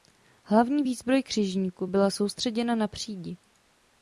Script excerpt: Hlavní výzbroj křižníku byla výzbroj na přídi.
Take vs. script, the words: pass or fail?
fail